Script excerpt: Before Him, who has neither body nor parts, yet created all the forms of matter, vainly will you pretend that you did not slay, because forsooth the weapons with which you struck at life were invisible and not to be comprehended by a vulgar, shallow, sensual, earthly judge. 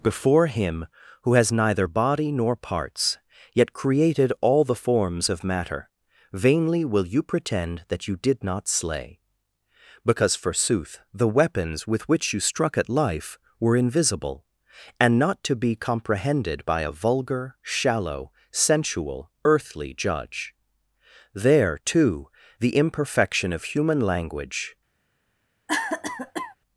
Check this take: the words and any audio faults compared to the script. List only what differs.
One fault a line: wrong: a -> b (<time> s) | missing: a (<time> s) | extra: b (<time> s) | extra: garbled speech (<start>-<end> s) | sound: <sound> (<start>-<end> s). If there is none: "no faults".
extra: There too the imperfection of human language (21.3 s)
sound: cough (25.7-26.6 s)